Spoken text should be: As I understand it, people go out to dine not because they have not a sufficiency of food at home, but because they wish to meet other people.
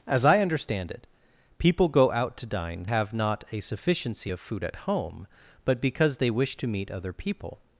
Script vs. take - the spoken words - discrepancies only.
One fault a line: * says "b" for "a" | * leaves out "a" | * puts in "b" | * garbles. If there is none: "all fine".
* leaves out "not because they"